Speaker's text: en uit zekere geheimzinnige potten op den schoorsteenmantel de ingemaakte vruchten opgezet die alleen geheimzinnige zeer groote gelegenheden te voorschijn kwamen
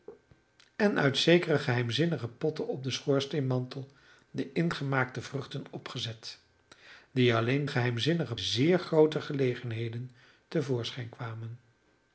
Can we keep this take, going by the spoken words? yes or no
yes